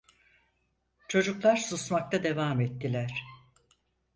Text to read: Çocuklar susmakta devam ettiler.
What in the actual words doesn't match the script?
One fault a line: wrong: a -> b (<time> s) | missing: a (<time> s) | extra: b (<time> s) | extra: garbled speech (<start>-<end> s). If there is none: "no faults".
no faults